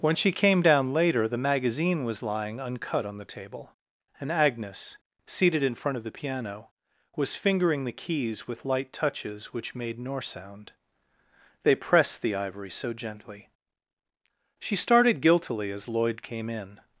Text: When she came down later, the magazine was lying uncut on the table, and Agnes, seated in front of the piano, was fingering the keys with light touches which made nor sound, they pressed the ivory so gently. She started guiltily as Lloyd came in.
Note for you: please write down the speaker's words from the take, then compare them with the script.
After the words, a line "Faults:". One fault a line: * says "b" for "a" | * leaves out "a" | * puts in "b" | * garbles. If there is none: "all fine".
When she came down later, the magazine was lying uncut on the table, and Agnes, seated in front of the piano, was fingering the keys with light touches which made nor sound, they pressed the ivory so gently. She started guiltily as Lloyd came in.
Faults:
all fine